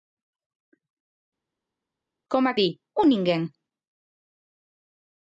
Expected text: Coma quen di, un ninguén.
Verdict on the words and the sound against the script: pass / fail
fail